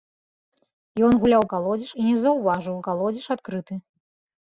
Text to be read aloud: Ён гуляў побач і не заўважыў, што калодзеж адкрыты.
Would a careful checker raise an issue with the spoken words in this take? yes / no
yes